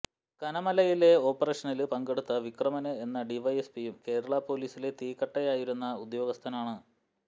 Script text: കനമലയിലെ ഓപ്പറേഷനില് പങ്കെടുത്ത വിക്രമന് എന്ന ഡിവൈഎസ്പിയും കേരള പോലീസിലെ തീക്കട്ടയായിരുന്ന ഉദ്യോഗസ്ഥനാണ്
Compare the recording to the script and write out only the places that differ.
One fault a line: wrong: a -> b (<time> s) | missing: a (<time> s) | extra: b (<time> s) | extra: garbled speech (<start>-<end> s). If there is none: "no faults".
no faults